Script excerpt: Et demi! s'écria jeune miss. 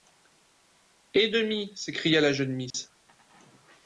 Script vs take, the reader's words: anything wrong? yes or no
yes